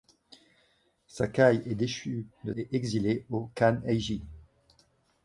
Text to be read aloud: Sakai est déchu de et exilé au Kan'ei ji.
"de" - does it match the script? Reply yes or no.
yes